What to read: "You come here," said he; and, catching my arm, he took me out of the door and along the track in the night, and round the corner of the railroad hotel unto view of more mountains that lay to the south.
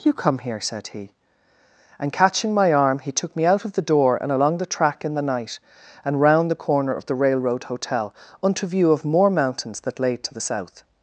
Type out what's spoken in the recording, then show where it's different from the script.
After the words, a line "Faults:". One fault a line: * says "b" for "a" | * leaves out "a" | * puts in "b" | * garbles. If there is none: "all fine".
"You come here," said he; and, catching my arm, he took me out of the door and along the track in the night, and round the corner of the railroad hotel unto view of more mountains that lay to the south.
Faults:
all fine